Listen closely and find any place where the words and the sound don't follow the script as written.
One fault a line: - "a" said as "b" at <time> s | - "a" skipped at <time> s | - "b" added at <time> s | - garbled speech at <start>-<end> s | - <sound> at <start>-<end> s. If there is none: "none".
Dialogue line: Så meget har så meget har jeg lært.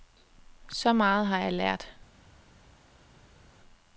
- "så meget har" skipped at 1.4 s